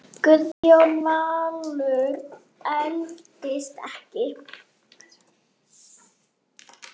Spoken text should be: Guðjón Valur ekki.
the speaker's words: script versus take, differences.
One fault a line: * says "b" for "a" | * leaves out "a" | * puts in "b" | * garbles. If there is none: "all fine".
* puts in "eldist"